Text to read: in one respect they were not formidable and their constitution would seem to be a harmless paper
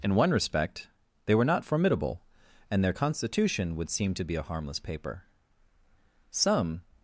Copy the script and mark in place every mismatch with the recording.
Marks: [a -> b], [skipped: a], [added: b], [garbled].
in one respect they were not formidable and their constitution would seem to be a harmless paper [added: some]